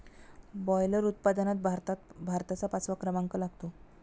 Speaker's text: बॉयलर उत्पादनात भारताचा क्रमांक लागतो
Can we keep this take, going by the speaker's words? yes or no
no